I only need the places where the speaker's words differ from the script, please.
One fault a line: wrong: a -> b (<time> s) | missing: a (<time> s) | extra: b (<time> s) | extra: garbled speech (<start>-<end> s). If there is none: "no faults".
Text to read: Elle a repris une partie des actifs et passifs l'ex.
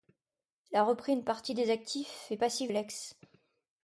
no faults